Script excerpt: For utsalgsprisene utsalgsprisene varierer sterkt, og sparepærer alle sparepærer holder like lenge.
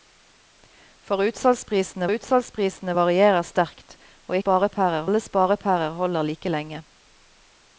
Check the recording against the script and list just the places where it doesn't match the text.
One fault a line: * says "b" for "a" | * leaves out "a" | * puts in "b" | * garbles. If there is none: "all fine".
all fine